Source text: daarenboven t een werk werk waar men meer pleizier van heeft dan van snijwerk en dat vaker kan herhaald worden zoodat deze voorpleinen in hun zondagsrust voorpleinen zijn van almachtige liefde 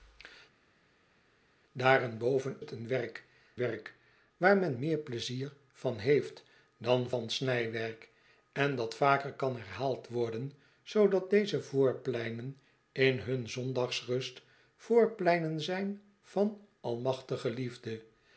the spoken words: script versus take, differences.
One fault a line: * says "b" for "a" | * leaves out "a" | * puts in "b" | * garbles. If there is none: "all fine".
all fine